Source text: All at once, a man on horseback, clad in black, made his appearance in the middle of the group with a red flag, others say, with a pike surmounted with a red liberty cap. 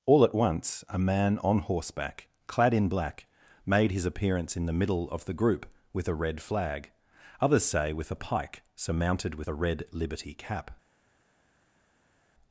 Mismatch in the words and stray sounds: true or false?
false